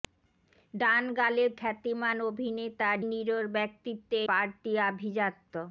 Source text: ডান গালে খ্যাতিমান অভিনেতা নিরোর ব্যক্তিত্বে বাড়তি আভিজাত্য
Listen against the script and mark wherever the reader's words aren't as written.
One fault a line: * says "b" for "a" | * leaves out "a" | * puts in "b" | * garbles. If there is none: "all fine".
all fine